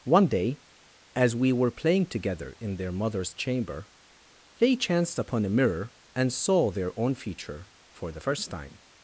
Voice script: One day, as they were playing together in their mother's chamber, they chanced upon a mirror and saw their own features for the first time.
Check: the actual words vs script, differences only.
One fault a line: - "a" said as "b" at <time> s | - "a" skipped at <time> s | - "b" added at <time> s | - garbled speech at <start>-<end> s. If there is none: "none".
- "they" said as "we" at 1.4 s
- "features" said as "feature" at 7.2 s